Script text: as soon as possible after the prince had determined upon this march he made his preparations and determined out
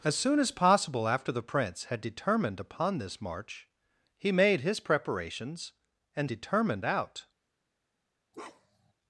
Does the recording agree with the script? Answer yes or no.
yes